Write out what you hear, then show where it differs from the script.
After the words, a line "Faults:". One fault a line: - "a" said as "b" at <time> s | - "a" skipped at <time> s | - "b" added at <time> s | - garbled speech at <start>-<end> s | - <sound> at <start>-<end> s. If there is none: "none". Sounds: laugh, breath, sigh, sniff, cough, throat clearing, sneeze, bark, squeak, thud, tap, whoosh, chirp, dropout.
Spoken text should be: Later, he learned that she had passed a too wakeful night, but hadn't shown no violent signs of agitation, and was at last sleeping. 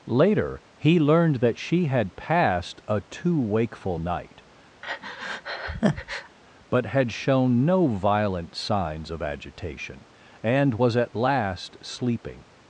Later, he learned that she had passed a too wakeful night, but had shown no violent signs of agitation, and was at last sleeping.
Faults:
- breath at 4.8-6.4 s
- "hadn't" said as "had" at 6.9 s